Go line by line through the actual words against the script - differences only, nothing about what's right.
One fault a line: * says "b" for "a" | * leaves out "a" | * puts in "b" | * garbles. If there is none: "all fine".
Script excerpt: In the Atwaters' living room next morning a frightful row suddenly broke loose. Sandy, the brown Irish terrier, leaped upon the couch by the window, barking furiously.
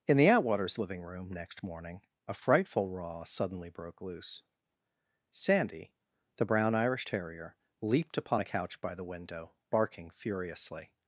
* says "a" for "the"